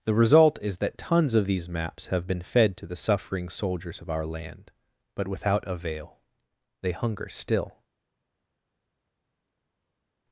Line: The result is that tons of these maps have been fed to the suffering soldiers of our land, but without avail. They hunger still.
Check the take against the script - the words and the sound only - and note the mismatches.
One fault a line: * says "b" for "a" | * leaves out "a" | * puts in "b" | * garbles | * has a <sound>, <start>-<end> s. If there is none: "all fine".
all fine